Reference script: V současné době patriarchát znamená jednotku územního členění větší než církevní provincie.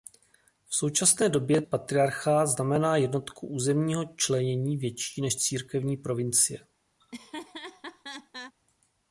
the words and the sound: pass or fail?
fail